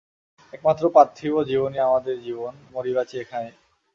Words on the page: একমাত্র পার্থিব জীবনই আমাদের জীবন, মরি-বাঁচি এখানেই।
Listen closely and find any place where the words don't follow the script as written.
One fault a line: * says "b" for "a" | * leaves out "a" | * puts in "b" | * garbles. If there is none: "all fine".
all fine